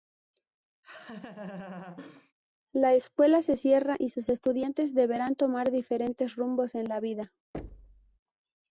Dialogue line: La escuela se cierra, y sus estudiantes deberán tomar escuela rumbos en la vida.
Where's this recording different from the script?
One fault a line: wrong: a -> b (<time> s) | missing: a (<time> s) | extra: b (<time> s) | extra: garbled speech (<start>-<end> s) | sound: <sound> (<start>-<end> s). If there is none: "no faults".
sound: laugh (0.8-2.3 s)
wrong: escuela -> diferentes (5.7 s)
sound: thud (7.5-8.2 s)